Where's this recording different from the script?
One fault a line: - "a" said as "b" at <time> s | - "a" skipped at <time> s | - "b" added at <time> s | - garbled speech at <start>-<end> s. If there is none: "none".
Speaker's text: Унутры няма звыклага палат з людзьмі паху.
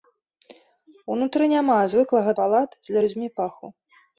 none